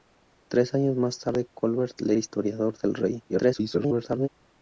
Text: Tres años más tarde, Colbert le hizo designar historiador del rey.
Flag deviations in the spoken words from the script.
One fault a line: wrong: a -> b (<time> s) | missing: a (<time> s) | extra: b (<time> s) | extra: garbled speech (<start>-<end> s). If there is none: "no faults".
missing: hizo designar (2.1 s)
extra: garbled speech (3.3-4.3 s)